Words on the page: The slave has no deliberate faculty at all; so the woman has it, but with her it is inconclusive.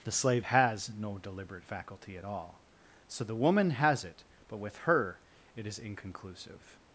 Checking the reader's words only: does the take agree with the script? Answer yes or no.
yes